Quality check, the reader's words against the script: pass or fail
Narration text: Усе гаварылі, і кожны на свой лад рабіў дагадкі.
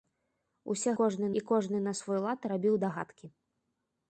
fail